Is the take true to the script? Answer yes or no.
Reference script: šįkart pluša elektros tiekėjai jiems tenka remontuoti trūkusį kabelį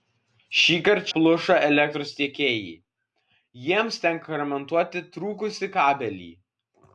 yes